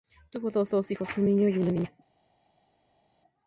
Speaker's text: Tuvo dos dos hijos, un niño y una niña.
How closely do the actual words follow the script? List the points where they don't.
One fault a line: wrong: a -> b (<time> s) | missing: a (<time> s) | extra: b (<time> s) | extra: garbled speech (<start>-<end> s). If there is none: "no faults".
no faults